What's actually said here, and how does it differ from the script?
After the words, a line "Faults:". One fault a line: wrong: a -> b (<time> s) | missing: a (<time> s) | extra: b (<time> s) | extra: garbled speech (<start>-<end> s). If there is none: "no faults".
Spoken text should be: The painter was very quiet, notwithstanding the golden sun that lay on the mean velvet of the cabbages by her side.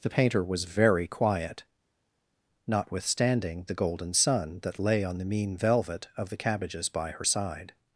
The painter was very quiet, notwithstanding the golden sun that lay on the mean velvet of the cabbages by her side.
Faults:
no faults